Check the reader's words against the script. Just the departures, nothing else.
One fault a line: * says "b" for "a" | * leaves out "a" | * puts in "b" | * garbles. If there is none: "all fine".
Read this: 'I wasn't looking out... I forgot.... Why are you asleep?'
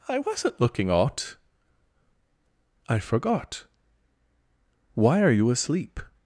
all fine